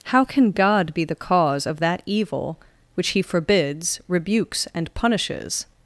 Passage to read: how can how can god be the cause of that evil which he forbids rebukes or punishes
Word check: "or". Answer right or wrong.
wrong